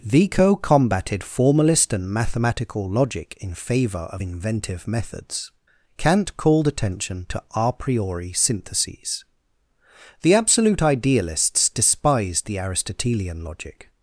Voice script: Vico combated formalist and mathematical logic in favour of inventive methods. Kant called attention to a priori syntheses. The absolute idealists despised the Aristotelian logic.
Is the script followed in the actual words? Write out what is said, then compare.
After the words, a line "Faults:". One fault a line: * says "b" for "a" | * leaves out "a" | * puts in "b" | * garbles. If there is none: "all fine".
Vico combated formalist and mathematical logic in favour of inventive methods. Kant called attention to a priori syntheses. The absolute idealists despised the Aristotelian logic.
Faults:
all fine